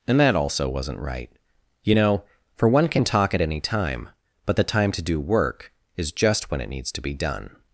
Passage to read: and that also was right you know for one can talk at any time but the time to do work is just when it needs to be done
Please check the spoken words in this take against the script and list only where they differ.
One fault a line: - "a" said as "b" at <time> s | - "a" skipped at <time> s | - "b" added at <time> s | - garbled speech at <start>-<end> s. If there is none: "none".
- "was" said as "wasn't" at 0.7 s